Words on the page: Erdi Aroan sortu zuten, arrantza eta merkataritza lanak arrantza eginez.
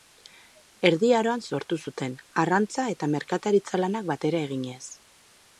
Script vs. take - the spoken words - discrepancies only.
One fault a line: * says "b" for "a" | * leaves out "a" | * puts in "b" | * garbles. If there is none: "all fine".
* says "batera" for "arrantza"